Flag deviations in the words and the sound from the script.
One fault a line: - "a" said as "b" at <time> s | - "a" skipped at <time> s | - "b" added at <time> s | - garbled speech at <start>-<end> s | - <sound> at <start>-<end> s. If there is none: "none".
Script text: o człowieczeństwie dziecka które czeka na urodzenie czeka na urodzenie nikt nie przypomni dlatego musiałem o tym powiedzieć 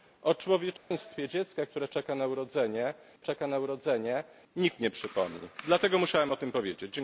- dropout at 0.8-0.9 s